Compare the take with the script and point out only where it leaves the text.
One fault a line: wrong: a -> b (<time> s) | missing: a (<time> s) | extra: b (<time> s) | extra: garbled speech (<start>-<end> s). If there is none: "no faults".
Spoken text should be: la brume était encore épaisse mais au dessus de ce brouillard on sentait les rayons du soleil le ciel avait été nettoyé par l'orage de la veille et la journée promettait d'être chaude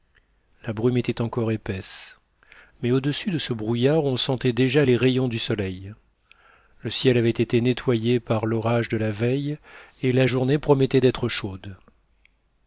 extra: déjà (4.5 s)